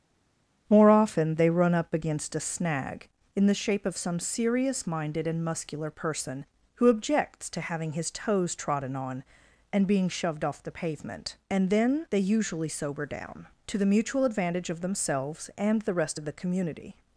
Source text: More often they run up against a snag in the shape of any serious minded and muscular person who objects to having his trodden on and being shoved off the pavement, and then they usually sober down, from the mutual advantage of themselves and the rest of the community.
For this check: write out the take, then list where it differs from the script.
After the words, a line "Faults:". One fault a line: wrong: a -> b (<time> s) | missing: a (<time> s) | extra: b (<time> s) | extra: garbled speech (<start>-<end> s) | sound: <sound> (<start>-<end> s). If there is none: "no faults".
More often they run up against a snag in the shape of some serious minded and muscular person who objects to having his toes trodden on and being shoved off the pavement, and then they usually sober down, to the mutual advantage of themselves and the rest of the community.
Faults:
wrong: any -> some (4.0 s)
extra: toes (8.1 s)
wrong: from -> to (13.7 s)